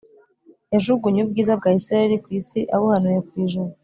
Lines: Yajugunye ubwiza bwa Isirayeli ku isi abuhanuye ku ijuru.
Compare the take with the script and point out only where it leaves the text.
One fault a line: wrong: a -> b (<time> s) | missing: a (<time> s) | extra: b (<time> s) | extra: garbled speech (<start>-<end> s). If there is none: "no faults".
no faults